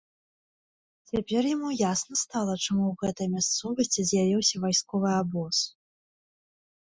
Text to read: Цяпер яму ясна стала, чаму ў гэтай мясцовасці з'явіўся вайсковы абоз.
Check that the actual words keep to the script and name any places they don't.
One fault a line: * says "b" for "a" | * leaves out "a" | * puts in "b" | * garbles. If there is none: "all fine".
all fine